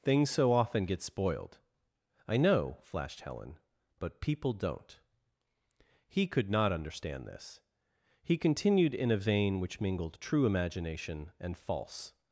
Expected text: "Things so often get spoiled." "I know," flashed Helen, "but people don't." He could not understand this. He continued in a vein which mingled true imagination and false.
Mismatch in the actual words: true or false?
false